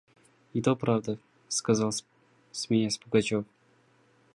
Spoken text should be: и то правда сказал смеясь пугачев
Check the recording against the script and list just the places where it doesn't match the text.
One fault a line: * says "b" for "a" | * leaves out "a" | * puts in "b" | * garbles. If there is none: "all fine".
all fine